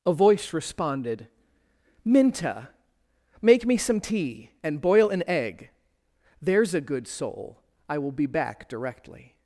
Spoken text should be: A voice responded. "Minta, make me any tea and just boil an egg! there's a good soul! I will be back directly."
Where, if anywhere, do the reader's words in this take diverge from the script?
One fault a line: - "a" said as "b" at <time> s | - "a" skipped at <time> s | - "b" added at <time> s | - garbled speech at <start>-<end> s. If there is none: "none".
- "any" said as "some" at 3.8 s
- "just" skipped at 4.8 s